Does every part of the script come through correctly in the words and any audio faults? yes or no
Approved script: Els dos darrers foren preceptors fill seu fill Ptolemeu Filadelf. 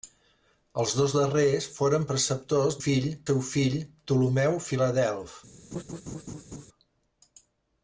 no